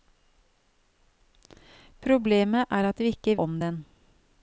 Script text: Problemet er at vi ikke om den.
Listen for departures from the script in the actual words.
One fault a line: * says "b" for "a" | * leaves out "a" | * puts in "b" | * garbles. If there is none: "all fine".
all fine